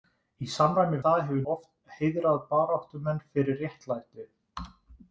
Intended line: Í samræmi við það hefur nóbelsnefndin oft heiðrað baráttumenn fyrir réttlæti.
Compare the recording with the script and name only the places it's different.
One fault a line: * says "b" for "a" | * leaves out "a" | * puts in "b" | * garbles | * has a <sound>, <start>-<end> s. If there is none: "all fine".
* leaves out "við"
* leaves out "nóbelsnefndin"